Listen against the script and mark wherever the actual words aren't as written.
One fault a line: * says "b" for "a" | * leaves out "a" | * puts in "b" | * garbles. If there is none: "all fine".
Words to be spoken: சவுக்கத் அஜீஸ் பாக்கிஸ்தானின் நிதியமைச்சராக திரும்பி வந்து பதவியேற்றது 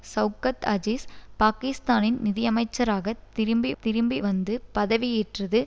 * puts in "திரும்பி"